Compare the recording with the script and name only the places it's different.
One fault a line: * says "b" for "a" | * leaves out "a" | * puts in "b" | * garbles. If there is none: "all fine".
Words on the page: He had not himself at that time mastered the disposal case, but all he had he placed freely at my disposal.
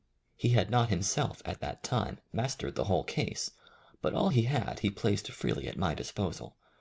* says "whole" for "disposal"